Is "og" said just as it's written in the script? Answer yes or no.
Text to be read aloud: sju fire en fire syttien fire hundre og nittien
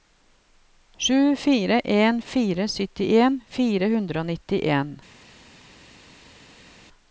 yes